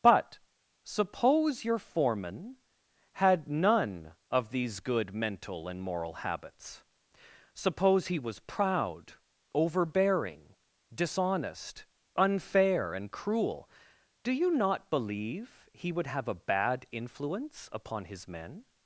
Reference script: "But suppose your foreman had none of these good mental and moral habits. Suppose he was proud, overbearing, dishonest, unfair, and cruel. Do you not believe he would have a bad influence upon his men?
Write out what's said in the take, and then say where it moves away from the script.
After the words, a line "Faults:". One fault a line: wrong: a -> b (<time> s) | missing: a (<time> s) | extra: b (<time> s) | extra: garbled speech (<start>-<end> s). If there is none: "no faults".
"But suppose your foreman had none of these good mental and moral habits. Suppose he was proud, overbearing, dishonest, unfair, and cruel. Do you not believe he would have a bad influence upon his men?
Faults:
no faults